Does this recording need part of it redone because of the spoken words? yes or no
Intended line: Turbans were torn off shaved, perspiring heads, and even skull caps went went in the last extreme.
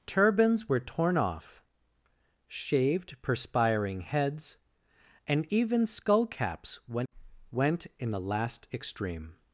no